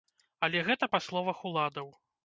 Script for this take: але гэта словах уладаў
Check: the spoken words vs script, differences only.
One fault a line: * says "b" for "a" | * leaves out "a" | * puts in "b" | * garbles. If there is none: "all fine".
* puts in "па"